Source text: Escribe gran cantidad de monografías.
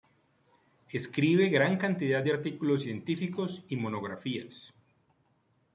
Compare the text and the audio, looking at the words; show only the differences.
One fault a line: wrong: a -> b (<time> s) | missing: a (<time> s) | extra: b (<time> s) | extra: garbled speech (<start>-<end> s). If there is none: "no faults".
extra: artículos científicos y (2.3 s)